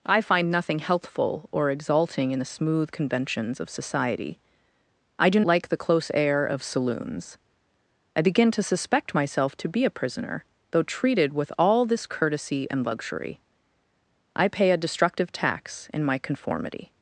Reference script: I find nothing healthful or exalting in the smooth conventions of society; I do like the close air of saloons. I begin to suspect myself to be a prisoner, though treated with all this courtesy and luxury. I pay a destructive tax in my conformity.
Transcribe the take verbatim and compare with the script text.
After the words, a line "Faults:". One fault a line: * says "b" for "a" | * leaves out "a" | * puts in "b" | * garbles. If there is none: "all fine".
I find nothing healthful or exalting in the smooth conventions of society; I do like the close air of saloons. I begin to suspect myself to be a prisoner, though treated with all this courtesy and luxury. I pay a destructive tax in my conformity.
Faults:
all fine